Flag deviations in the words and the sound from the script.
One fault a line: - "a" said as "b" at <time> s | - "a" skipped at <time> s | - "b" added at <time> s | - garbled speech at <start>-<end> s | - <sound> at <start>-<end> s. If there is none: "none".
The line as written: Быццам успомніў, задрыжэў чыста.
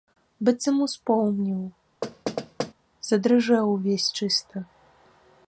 - thud at 2.0-2.7 s
- "увесь" added at 3.8 s